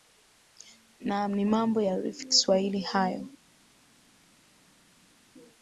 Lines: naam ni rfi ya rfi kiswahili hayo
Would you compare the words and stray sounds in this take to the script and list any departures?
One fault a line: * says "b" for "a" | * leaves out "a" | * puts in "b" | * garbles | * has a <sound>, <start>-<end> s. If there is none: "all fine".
* says "mambo" for "rfi"